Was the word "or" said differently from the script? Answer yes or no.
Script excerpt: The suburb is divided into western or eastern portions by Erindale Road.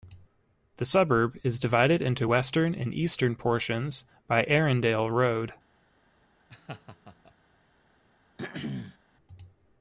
yes